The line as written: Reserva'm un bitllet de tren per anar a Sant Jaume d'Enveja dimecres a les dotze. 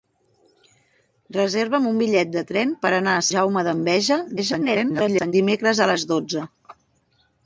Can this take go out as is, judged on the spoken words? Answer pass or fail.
fail